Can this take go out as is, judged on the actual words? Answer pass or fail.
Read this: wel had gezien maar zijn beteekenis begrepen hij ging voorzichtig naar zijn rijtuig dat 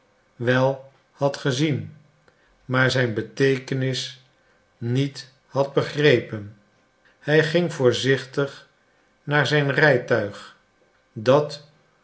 fail